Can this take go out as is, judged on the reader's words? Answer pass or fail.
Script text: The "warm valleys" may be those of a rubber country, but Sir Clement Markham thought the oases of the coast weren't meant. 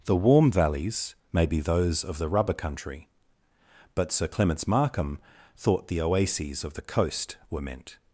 fail